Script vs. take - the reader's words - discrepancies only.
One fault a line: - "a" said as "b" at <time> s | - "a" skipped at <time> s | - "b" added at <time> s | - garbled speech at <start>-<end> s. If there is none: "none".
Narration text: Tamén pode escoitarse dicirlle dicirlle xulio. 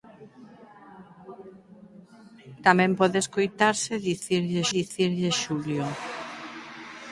none